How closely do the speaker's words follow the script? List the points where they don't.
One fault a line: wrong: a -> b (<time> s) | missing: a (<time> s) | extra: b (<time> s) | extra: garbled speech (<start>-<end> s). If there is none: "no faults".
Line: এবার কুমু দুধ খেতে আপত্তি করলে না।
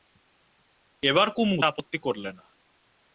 missing: দুধ খেতে (1.6 s)